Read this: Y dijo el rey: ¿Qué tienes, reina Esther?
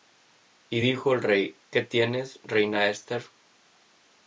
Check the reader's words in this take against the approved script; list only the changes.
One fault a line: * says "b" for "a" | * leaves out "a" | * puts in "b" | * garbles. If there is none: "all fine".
all fine